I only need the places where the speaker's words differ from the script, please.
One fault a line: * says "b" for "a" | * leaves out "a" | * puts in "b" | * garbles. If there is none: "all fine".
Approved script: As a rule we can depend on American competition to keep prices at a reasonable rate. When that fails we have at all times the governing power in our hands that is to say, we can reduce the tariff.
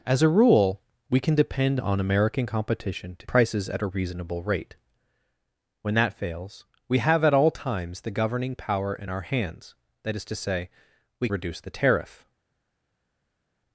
* leaves out "keep"
* leaves out "can"